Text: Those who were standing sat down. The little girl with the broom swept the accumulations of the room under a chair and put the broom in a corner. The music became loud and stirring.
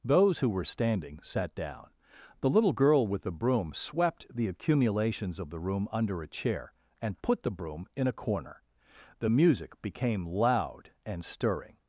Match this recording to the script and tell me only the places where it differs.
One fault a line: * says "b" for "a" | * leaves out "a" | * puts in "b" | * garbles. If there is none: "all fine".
all fine